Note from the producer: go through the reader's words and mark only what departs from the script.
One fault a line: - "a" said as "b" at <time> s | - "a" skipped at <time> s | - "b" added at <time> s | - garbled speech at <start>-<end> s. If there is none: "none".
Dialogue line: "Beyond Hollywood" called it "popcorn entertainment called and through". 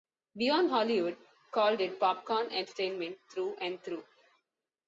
- "called" said as "through" at 3.3 s